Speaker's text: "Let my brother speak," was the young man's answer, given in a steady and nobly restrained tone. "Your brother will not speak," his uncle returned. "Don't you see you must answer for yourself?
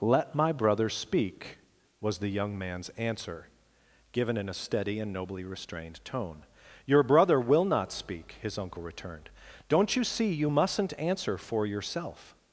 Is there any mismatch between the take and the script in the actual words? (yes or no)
yes